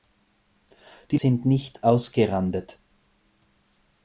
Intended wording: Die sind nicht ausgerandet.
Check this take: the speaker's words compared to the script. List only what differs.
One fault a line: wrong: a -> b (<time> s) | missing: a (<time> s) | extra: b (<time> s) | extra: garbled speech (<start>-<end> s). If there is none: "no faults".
no faults